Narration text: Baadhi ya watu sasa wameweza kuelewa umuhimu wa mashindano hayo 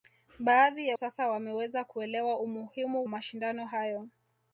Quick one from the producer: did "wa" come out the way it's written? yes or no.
no